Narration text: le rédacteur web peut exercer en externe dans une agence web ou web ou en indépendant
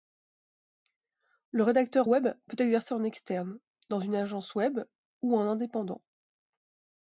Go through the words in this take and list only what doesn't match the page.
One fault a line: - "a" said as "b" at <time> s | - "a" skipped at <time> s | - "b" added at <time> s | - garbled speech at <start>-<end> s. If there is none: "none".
- "web ou" skipped at 5.4 s